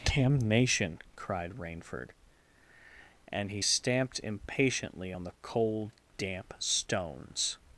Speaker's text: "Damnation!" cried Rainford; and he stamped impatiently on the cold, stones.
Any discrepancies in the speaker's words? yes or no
yes